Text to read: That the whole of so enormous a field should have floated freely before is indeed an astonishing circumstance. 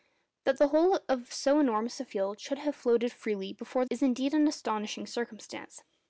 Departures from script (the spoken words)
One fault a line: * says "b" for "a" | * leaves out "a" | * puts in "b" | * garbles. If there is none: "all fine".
all fine